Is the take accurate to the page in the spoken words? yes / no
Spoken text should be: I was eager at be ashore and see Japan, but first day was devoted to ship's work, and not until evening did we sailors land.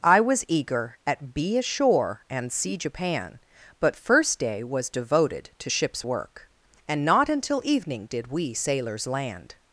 yes